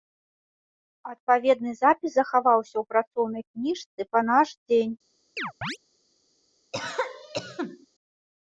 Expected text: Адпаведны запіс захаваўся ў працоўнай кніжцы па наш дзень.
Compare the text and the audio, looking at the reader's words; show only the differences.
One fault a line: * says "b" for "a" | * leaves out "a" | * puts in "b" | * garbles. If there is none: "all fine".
all fine